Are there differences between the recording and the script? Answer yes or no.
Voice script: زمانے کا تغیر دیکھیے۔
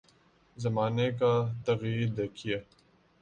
no